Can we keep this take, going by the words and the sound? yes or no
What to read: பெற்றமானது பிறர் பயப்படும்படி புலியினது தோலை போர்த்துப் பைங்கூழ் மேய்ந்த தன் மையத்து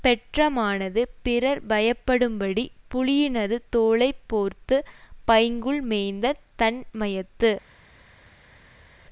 yes